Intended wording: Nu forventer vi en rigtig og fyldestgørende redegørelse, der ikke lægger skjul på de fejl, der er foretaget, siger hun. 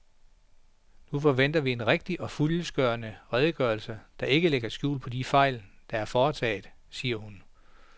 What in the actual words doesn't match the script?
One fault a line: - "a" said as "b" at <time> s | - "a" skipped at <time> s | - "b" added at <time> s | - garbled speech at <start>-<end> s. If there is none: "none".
none